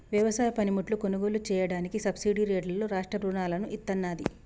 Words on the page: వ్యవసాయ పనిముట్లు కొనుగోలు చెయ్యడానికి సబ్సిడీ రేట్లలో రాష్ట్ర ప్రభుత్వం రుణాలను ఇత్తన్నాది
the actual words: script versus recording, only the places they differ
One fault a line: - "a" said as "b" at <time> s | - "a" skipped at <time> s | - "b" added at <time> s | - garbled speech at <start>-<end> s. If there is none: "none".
- "ప్రభుత్వం" skipped at 3.2 s